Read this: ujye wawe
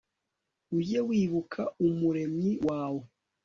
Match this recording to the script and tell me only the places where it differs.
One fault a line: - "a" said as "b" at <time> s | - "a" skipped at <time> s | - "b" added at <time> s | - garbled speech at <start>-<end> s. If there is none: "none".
- "wibuka umuremyi" added at 1.1 s